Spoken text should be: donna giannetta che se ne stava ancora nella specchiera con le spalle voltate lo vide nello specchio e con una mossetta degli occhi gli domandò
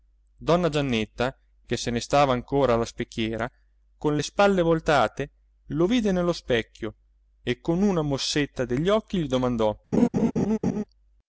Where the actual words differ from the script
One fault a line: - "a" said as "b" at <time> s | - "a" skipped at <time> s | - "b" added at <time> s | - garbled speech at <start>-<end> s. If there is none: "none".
- "nella" said as "alla" at 2.7 s